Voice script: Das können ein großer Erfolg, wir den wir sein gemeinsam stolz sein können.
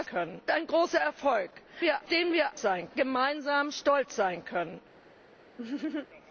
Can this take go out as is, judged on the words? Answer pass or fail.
pass